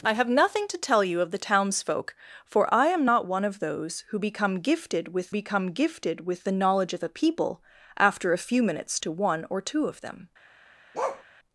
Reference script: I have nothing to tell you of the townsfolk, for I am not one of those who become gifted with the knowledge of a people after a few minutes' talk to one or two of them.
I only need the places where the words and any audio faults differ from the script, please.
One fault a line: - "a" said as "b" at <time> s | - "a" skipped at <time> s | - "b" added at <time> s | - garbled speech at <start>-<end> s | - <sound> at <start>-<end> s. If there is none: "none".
- "become gifted with" added at 5.3 s
- "talk" skipped at 9.0 s
- bark at 10.9-11.2 s